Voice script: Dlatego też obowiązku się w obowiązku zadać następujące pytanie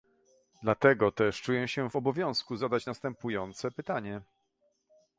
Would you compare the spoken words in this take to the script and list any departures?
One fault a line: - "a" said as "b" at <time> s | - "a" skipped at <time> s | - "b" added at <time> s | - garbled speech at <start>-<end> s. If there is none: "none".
- "obowiązku" said as "czuję" at 1.4 s